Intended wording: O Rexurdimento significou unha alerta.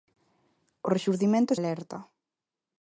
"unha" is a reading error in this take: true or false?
true